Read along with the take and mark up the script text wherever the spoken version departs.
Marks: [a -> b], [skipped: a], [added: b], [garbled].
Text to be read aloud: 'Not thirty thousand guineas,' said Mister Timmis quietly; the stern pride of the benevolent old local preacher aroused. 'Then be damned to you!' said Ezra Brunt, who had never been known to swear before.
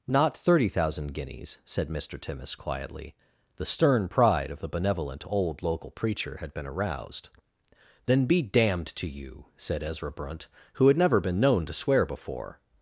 'Not thirty thousand guineas,' said Mister Timmis quietly; the stern pride of the benevolent old local preacher [added: had been] aroused. 'Then be damned to you!' said Ezra Brunt, who had never been known to swear before.